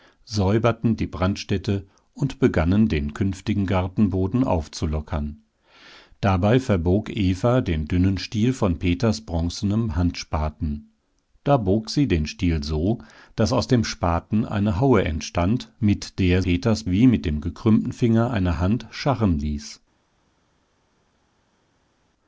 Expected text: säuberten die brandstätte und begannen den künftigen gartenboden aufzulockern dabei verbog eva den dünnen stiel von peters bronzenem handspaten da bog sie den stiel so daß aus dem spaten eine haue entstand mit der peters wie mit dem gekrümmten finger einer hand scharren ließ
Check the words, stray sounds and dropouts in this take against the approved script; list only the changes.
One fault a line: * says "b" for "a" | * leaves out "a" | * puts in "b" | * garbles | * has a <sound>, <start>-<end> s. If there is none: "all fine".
all fine